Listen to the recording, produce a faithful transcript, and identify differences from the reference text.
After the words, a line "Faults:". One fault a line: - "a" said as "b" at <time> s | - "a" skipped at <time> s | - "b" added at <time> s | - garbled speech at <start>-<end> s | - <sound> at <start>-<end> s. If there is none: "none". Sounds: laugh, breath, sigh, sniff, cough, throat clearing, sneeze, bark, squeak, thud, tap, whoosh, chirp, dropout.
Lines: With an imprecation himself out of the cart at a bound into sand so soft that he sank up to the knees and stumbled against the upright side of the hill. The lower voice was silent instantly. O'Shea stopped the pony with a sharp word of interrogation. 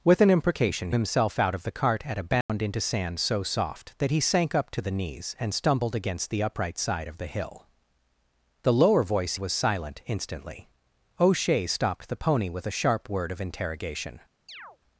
With an imprecation himself out of the cart at a bound into sand so soft that he sank up to the knees and stumbled against the upright side of the hill. The lower voice was silent instantly. O'Shea stopped the pony with a sharp word of interrogation.
Faults:
- dropout at 2.4-2.5 s
- chirp at 14.5-14.8 s